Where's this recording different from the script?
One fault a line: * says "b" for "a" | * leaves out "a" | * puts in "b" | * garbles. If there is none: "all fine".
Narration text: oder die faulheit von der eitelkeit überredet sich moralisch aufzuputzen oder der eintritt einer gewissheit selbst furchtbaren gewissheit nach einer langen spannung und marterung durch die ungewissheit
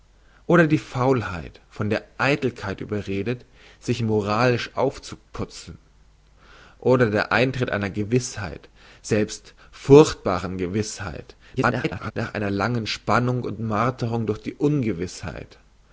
* garbles